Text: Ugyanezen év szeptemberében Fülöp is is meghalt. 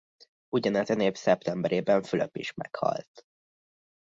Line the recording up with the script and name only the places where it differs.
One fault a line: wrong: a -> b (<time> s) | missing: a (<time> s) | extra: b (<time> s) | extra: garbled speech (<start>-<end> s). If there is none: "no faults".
missing: is (2.5 s)